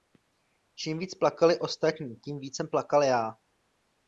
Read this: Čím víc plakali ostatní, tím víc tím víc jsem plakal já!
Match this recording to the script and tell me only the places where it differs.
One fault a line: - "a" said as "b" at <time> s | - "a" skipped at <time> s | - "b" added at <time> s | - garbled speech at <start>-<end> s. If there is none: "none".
- "tím víc" skipped at 2.6 s